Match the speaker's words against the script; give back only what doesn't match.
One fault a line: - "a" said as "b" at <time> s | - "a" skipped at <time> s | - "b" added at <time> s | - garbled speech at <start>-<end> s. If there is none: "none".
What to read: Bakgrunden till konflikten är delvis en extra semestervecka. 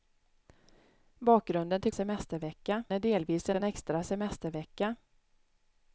- "konflikten" said as "semestervecka" at 1.9 s
- "en" added at 3.5 s